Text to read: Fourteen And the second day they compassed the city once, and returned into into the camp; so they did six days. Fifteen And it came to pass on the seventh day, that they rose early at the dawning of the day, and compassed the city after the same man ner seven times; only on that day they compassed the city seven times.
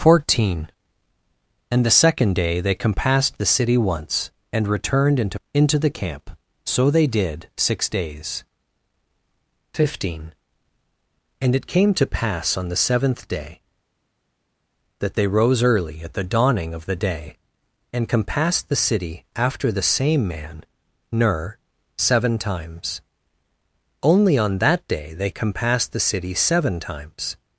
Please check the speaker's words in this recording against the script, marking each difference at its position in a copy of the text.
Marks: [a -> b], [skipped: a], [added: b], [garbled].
Fourteen And the second day they compassed the city once, and returned into into the camp; so they did six days. Fifteen And it came to pass on the seventh day, that they rose early at the dawning of the day, and compassed the city after the same man ner seven times; only on that day they compassed the city seven times.